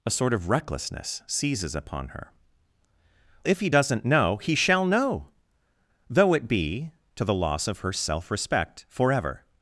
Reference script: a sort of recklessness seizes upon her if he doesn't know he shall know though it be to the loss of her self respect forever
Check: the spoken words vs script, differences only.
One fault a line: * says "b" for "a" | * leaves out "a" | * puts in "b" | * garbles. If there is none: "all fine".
all fine